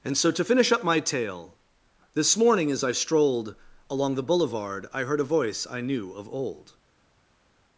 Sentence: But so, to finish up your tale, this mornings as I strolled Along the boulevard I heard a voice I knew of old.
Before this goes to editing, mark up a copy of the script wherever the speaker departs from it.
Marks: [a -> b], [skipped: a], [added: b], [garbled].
[But -> And] so, to finish up [your -> my] tale, this [mornings -> morning] as I strolled Along the boulevard I heard a voice I knew of old.